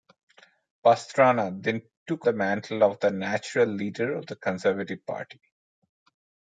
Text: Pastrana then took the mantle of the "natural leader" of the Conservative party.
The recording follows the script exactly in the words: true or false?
true